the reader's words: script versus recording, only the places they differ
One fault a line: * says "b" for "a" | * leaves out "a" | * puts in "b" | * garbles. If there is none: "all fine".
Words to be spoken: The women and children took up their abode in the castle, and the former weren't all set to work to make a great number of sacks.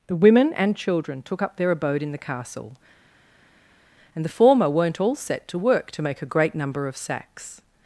all fine